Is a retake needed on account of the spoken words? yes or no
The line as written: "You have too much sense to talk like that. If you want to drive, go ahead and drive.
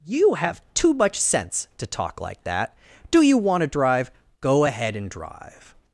yes